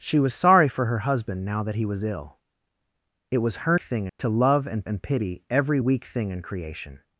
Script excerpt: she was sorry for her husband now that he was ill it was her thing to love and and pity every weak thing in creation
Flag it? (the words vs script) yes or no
no